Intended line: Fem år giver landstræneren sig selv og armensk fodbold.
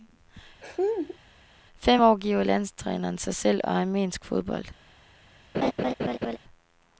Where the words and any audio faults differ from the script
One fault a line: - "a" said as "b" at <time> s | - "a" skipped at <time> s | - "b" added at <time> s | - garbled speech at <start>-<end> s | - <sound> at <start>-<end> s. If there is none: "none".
- laugh at 0.6-1.2 s
- laugh at 5.5-6.4 s